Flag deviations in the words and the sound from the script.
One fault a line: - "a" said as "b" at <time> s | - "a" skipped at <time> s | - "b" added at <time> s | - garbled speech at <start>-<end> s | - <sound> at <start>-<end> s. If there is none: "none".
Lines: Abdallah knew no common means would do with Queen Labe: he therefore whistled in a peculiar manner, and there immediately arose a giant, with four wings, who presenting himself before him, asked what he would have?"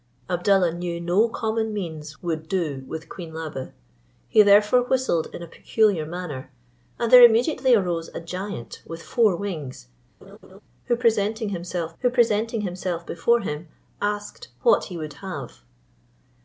- laugh at 10.2-10.6 s
- "who presenting himself" added at 12.0 s